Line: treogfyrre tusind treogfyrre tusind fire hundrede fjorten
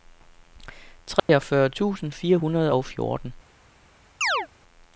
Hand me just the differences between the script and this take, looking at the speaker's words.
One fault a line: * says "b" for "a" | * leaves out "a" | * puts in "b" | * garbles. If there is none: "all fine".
* leaves out "treogfyrre tusind"
* puts in "og"